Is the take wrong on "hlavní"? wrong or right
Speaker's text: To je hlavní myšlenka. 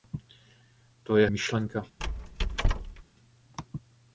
wrong